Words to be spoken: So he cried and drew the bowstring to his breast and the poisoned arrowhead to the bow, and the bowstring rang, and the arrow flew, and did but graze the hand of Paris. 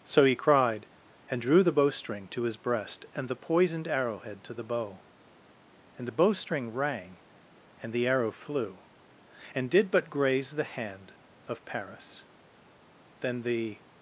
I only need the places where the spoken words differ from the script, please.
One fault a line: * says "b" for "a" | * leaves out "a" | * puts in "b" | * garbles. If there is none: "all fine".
* puts in "Then the"